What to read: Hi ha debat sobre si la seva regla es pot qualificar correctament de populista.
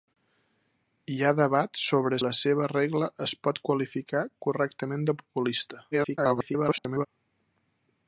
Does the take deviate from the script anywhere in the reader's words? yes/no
yes